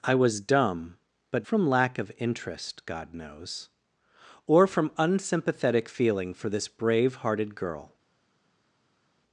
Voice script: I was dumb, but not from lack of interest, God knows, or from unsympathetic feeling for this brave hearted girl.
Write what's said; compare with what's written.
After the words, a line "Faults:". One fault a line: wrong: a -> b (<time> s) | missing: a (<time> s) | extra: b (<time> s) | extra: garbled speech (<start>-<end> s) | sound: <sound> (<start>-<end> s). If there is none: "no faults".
I was dumb, but from lack of interest, God knows, or from unsympathetic feeling for this brave hearted girl.
Faults:
missing: not (1.5 s)